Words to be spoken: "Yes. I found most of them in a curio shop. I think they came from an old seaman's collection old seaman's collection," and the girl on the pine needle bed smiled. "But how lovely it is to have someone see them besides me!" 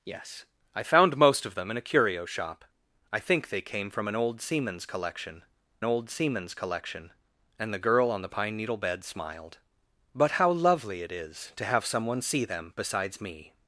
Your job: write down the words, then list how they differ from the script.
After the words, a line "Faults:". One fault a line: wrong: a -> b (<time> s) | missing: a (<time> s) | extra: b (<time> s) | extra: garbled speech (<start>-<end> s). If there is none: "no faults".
"Yes. I found most of them in a curio shop. I think they came from an old seaman's collection old seaman's collection," and the girl on the pine needle bed smiled. "But how lovely it is to have someone see them besides me!"
Faults:
no faults